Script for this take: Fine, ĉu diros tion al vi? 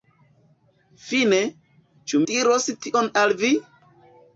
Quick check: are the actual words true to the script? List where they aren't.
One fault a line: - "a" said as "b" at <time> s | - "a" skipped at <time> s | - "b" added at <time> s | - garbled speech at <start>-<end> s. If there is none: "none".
none